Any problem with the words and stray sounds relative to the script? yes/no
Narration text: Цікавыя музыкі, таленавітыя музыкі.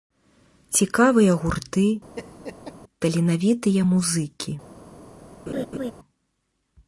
yes